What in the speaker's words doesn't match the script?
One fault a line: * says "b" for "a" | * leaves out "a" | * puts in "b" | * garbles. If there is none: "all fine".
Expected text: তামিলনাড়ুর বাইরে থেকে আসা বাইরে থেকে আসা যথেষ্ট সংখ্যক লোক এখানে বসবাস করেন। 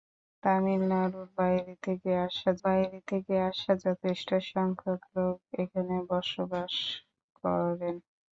all fine